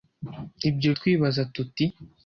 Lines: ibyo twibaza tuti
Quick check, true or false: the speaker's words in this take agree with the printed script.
true